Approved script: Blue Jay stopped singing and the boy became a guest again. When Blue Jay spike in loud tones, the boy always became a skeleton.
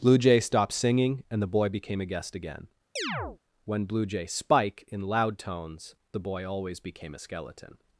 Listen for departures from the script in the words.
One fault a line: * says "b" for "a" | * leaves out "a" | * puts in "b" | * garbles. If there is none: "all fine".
all fine